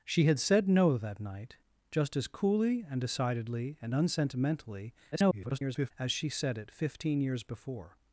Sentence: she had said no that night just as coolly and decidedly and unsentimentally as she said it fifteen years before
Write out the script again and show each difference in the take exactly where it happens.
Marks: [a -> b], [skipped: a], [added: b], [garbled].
she had said no that night just as coolly and decidedly and unsentimentally [garbled] as she said it fifteen years before